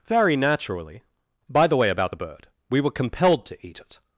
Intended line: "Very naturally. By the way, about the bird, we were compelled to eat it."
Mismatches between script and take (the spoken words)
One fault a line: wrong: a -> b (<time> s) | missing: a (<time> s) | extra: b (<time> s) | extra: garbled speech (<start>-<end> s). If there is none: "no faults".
no faults